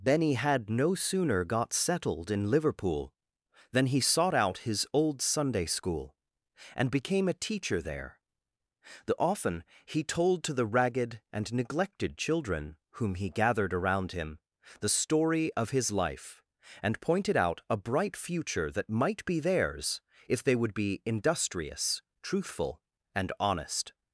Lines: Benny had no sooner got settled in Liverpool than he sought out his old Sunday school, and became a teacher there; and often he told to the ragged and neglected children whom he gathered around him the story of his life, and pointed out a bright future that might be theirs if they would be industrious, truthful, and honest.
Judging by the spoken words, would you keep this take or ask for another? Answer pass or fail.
fail